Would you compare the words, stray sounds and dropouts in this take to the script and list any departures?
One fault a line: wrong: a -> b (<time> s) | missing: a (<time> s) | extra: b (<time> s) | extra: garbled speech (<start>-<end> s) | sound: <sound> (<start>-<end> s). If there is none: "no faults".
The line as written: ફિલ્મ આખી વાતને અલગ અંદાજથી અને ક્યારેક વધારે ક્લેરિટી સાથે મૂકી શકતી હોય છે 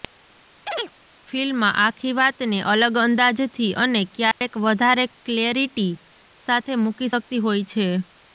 sound: chirp (0.7-0.9 s)
sound: dropout (4.3-4.4 s)